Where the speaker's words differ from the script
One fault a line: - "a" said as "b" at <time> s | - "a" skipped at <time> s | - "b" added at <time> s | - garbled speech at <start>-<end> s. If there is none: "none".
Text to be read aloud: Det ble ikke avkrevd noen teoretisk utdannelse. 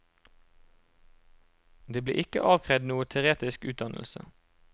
none